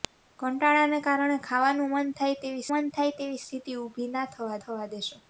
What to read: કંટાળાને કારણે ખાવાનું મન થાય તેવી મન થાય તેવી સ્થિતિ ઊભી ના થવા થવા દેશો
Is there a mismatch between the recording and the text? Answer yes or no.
no